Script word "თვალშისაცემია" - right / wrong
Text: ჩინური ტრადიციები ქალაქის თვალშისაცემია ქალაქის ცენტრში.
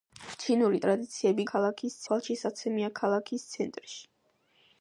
right